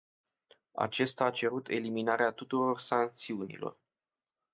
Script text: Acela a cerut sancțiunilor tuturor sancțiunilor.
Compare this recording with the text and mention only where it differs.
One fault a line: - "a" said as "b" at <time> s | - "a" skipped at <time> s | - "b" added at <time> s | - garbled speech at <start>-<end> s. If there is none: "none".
- "Acela" said as "Acesta" at 0.7 s
- "sancțiunilor" said as "eliminarea" at 1.7 s